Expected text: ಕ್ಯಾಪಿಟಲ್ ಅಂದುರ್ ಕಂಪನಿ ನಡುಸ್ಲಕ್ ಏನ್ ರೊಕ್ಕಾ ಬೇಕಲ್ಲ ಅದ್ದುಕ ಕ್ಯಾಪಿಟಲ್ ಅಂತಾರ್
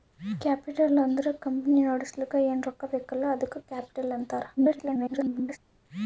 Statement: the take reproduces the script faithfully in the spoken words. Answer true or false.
false